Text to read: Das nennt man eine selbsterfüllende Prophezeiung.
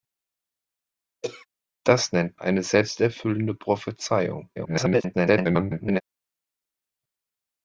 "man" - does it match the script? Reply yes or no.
no